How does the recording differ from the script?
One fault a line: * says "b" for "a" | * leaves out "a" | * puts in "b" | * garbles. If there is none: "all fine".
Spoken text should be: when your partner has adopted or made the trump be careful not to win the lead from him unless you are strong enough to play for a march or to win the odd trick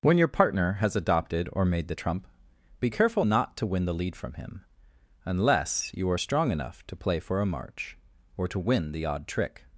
all fine